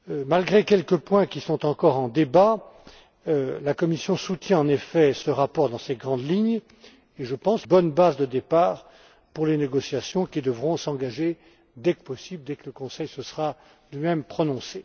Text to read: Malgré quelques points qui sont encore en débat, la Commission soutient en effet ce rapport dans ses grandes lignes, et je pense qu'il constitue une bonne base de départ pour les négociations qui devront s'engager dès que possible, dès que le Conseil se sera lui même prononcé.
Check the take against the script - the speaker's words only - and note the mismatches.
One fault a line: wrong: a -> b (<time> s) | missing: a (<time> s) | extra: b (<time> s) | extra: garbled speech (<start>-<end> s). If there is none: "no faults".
missing: qu'il constitue une (7.7 s)